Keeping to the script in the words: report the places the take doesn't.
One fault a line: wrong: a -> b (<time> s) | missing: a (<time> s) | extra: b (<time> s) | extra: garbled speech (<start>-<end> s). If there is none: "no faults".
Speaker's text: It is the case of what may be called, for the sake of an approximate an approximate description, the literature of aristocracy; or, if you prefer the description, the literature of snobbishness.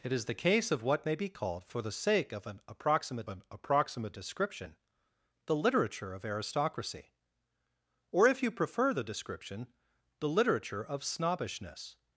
no faults